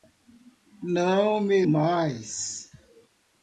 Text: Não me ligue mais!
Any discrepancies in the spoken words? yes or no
yes